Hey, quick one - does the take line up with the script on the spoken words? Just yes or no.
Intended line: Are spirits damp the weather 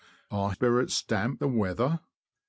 yes